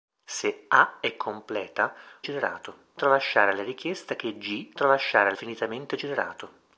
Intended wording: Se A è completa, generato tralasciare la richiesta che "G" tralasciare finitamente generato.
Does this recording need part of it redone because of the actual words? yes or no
no